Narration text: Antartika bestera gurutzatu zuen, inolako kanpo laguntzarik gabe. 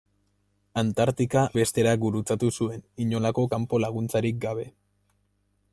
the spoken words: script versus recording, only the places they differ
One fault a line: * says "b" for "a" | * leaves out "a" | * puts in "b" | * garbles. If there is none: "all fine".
all fine